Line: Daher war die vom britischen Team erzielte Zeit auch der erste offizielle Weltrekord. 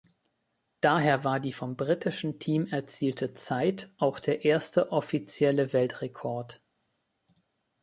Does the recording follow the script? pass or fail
pass